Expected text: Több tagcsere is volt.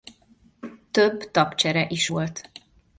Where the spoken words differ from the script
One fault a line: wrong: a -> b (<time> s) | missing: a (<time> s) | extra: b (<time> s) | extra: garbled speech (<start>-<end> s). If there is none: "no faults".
no faults